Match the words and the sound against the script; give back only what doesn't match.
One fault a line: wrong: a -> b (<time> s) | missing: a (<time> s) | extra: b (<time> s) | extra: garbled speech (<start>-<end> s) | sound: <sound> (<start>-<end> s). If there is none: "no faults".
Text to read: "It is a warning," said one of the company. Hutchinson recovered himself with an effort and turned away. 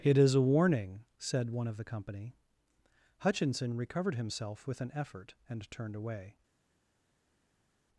no faults